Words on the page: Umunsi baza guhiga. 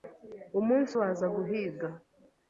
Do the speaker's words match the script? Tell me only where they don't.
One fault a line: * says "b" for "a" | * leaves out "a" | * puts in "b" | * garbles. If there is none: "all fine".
all fine